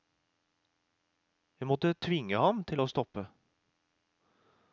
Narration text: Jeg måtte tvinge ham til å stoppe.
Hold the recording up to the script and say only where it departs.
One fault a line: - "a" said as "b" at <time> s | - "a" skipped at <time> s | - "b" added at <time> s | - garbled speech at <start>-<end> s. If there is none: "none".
none